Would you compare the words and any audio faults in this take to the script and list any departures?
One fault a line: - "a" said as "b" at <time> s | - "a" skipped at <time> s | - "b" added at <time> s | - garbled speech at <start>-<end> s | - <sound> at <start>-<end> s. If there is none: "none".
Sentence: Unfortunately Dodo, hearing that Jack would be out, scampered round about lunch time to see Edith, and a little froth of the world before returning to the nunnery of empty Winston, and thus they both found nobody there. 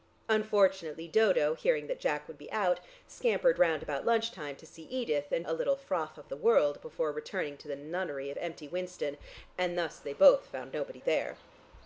none